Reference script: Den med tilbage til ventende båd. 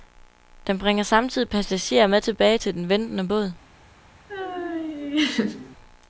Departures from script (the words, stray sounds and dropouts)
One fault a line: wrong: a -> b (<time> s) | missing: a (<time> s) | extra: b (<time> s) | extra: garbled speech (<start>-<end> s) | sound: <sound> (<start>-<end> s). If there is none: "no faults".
extra: bringer samtidig passagerer (0.8 s)
extra: den (2.7 s)
sound: laugh (4.3-5.8 s)